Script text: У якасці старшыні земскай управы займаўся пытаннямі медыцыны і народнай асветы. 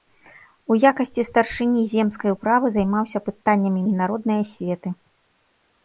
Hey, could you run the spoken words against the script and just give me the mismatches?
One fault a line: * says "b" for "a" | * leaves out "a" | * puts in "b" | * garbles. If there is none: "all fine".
* leaves out "медыцыны"